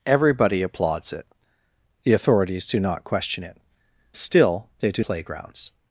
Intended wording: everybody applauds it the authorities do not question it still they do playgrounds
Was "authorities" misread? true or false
false